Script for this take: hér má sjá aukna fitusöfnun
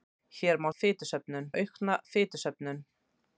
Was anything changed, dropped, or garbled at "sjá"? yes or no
yes